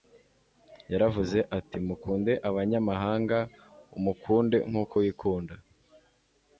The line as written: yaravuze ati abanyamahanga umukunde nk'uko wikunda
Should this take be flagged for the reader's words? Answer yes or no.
yes